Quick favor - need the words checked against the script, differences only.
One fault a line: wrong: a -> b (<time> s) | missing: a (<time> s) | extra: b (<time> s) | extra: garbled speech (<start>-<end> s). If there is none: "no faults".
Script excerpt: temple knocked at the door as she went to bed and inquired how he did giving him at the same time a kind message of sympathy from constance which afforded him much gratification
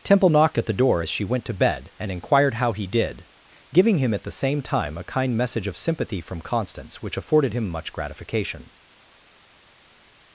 no faults